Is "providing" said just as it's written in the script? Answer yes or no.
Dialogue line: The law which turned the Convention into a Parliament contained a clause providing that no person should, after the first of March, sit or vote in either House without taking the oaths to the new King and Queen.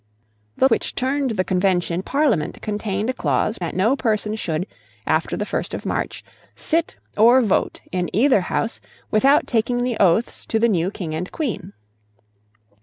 no